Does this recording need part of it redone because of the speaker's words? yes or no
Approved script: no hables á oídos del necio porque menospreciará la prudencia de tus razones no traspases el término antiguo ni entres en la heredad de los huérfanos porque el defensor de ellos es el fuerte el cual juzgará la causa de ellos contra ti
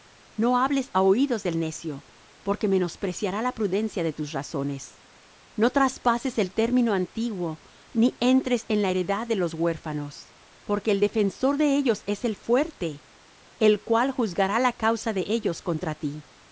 no